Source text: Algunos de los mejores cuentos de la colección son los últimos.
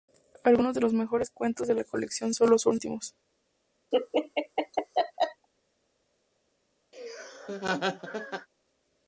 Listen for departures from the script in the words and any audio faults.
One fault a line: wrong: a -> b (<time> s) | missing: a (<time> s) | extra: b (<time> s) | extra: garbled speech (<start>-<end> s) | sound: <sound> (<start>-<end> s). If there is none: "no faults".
sound: laugh (3.9-5.5 s)
sound: laugh (6.9-8.5 s)